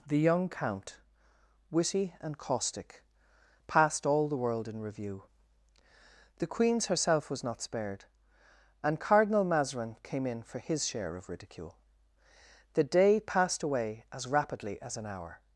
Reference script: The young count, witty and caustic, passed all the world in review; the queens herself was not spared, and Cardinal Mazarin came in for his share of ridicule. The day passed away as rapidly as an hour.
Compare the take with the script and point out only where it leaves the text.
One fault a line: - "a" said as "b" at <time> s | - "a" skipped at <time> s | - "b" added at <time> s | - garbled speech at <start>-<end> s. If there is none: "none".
none